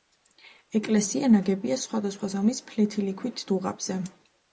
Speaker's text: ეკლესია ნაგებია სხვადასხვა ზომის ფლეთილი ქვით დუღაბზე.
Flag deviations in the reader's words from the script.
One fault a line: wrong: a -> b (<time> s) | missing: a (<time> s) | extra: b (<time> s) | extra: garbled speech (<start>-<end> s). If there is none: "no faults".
no faults